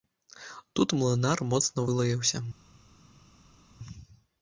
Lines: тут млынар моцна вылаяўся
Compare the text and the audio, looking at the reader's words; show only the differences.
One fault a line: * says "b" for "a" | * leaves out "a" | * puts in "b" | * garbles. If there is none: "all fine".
all fine